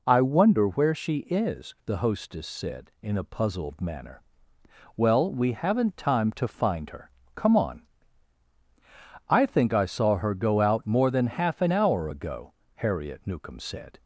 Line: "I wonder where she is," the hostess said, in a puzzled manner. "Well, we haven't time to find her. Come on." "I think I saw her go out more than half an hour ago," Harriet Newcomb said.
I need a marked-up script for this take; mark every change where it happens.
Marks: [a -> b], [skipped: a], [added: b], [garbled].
"I wonder where she is," the hostess said, in a puzzled manner. "Well, we haven't time to find her. Come on." "I think I saw her go out more than half an hour ago," Harriet Newcomb said.